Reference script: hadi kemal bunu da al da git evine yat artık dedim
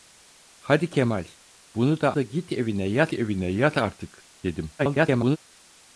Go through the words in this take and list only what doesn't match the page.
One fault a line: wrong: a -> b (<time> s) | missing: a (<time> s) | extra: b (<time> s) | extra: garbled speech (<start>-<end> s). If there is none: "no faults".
missing: al (2.1 s)
extra: evine yat (3.1 s)
extra: garbled speech (4.8-5.4 s)